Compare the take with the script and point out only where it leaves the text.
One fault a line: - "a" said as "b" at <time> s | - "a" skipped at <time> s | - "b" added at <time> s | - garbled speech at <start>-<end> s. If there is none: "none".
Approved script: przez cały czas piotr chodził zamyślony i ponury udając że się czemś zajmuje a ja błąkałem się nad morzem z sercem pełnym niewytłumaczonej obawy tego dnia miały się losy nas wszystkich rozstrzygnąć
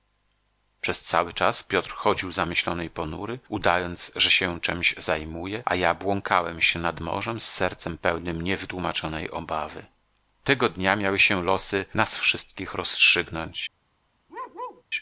none